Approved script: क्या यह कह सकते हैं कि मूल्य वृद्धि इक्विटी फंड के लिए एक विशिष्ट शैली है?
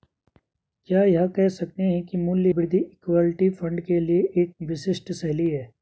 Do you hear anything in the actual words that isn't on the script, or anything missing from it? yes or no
no